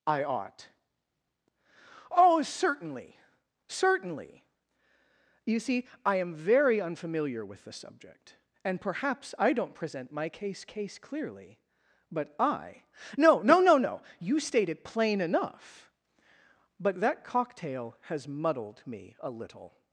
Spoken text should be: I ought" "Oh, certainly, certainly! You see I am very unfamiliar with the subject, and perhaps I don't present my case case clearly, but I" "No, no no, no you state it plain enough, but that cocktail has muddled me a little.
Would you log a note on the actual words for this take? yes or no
no